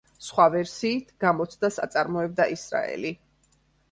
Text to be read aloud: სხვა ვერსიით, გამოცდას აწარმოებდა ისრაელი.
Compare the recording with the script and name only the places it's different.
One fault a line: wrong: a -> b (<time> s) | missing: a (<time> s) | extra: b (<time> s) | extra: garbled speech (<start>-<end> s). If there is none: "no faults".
no faults